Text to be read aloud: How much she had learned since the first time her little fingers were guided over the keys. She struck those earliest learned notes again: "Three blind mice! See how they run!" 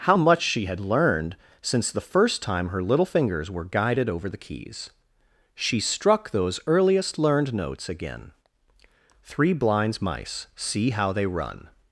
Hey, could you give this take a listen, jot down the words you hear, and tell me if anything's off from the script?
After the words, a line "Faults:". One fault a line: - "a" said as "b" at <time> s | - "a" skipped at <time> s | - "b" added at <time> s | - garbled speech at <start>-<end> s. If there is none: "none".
How much she had learned since the first time her little fingers were guided over the keys. She struck those earliest learned notes again: "Three blinds mice! See how they run!"
Faults:
- "blind" said as "blinds" at 9.5 s